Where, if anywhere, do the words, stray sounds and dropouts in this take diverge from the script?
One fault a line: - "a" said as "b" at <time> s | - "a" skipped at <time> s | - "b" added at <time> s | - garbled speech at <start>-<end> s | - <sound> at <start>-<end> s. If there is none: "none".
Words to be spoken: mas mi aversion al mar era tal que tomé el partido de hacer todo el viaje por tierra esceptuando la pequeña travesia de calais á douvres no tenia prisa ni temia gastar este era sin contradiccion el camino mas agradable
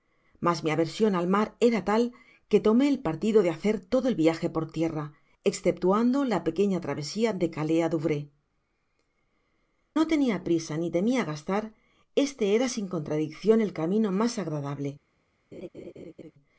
- laugh at 15.5-16.3 s